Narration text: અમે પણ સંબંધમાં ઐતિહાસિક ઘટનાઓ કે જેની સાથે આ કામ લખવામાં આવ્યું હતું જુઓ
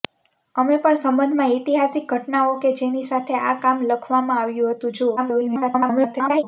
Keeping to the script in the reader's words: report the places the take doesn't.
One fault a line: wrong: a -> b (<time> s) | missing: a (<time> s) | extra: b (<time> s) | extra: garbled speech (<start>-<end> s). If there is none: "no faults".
extra: garbled speech (5.2-6.4 s)